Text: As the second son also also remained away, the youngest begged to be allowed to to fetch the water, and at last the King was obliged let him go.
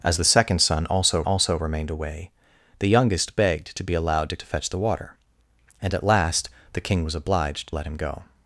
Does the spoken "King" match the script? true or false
true